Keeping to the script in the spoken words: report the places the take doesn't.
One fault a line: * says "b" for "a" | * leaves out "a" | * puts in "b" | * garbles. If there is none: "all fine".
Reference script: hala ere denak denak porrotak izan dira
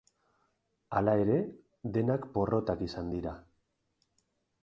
* leaves out "denak"